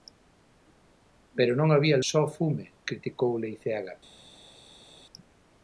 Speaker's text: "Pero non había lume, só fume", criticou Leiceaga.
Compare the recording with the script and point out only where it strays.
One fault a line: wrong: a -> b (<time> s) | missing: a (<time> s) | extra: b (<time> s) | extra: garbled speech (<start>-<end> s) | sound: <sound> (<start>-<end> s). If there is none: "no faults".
missing: lume (2.0 s)